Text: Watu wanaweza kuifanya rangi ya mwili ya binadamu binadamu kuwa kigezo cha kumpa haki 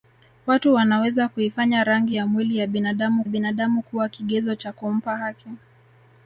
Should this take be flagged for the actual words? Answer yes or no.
no